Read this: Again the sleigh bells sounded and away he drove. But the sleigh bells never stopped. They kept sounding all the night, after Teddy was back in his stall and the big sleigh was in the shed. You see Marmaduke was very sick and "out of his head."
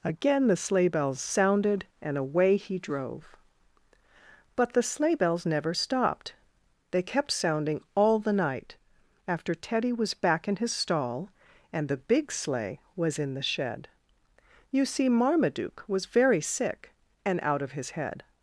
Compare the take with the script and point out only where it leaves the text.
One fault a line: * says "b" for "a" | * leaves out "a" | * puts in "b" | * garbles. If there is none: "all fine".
all fine